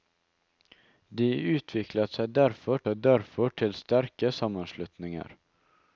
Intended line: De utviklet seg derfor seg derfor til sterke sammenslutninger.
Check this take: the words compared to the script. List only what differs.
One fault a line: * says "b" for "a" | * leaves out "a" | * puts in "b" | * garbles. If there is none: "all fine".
all fine